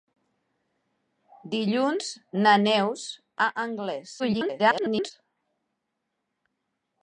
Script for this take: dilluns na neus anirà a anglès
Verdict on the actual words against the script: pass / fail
fail